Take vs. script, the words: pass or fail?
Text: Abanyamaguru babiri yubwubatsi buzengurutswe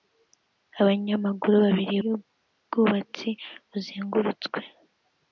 pass